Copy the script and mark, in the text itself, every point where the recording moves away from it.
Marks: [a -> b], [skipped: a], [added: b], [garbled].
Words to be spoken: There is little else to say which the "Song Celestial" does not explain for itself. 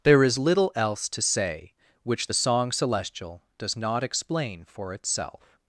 There is little else to say which the "Song Celestial" does not explain for itself.